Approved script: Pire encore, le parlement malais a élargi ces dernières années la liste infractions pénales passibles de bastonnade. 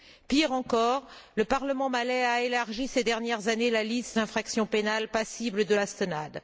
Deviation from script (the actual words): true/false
false